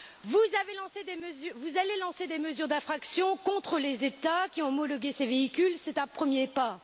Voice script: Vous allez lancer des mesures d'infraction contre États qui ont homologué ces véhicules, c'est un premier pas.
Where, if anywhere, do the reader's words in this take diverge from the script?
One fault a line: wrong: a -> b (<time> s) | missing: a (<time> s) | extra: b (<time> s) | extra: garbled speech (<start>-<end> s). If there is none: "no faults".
extra: les (3.8 s)